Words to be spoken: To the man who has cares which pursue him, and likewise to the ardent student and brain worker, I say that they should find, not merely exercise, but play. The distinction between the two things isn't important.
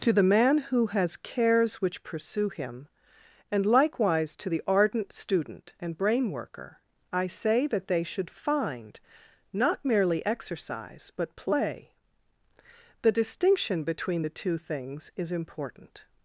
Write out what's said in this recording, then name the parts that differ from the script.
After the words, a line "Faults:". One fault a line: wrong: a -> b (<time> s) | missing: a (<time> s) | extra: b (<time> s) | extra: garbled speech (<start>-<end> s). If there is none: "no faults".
To the man who has cares which pursue him, and likewise to the ardent student and brain worker, I say that they should find, not merely exercise, but play. The distinction between the two things is important.
Faults:
wrong: isn't -> is (15.2 s)